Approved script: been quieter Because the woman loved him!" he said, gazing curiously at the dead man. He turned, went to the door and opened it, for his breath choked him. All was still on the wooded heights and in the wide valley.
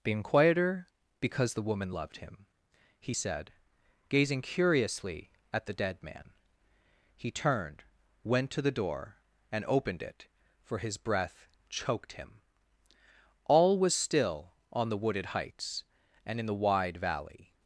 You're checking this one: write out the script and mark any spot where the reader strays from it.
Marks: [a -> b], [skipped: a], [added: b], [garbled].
been quieter Because the woman loved him!" he said, gazing curiously at the dead man. He turned, went to the door and opened it, for his breath choked him. All was still on the wooded heights and in the wide valley.